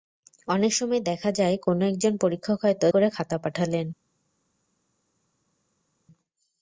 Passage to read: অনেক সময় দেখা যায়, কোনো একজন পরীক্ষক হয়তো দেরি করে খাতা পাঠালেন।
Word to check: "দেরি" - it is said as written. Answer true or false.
false